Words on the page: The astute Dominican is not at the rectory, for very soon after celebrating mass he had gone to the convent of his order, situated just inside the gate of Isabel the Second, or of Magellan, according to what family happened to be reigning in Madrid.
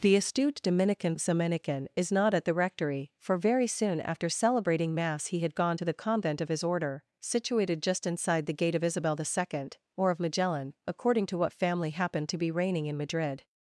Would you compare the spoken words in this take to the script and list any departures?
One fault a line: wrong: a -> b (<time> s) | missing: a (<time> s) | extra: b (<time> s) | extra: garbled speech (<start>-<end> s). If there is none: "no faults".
extra: Dominican (1.2 s)